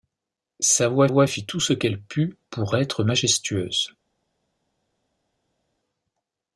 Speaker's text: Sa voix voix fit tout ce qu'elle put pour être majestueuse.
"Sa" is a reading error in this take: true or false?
false